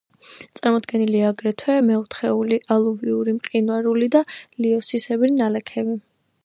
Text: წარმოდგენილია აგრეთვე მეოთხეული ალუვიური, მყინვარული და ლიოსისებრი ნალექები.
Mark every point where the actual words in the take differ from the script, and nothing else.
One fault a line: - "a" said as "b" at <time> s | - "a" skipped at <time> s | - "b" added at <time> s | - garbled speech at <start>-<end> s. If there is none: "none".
none